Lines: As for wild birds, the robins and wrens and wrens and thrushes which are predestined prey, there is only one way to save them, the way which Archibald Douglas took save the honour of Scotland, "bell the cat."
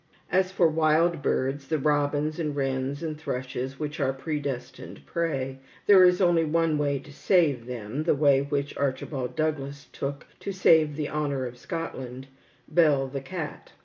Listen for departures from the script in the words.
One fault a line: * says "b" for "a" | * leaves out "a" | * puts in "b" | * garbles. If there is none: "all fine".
* leaves out "wrens and"
* puts in "to"